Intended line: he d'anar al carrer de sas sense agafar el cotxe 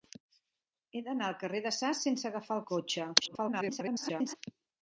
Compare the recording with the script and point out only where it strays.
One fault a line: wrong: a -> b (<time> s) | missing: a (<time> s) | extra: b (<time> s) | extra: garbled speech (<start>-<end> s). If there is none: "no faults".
extra: garbled speech (3.2-4.4 s)